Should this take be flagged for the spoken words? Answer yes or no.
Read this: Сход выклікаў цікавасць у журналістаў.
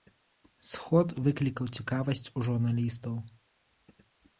no